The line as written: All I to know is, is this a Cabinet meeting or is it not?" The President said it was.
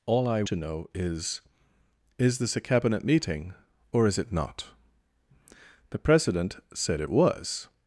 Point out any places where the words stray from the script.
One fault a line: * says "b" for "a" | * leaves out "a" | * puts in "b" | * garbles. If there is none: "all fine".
all fine